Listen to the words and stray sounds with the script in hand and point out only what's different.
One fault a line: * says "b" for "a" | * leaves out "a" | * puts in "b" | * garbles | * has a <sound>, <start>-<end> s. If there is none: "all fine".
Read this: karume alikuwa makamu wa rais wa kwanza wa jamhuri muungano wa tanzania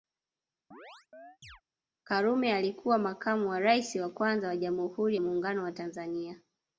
* has a chirp, 0.7-1.6 s